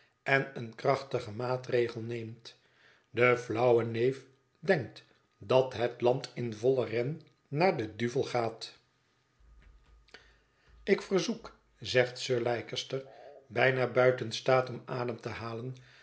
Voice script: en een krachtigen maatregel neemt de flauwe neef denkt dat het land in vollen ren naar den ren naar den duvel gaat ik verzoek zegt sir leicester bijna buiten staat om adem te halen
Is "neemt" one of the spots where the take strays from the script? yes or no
no